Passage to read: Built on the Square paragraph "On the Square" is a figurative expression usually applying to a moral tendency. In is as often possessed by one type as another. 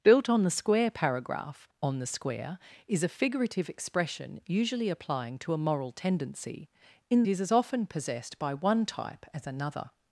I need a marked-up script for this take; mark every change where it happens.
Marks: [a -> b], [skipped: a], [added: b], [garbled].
Built on the Square paragraph "On the Square" is a figurative expression usually applying to a moral tendency. In is as often possessed by one type as another.